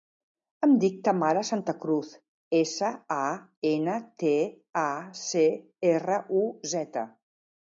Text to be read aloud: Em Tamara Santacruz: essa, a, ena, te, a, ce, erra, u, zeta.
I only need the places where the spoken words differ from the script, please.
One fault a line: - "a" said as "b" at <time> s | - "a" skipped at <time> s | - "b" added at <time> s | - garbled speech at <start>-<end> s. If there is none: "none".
- "dic" added at 0.8 s